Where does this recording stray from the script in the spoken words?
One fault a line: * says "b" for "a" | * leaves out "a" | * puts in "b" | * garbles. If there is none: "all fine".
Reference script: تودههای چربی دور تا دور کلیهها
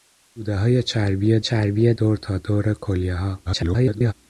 * puts in "چربی"
* garbles